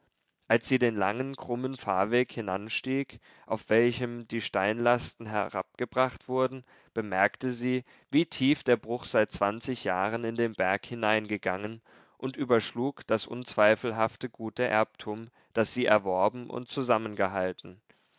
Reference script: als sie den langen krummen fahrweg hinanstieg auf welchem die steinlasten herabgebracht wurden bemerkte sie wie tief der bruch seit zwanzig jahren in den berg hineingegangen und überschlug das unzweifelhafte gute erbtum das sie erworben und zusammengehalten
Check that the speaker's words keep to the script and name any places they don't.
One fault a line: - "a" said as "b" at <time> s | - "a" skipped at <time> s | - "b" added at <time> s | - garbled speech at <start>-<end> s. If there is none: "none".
none